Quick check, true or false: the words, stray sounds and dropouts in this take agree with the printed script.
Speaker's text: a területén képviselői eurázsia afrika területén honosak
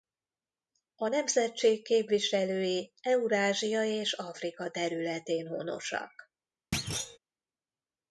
false